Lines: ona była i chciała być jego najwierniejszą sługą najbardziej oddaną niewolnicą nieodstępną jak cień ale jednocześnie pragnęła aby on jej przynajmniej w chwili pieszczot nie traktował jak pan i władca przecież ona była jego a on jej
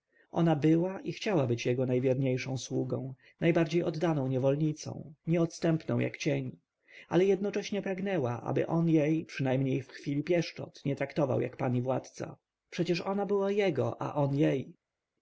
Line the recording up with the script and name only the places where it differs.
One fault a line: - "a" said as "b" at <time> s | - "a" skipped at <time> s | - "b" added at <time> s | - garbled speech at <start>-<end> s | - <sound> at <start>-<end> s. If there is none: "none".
none